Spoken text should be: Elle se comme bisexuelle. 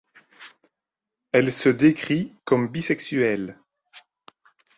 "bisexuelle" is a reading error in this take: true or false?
false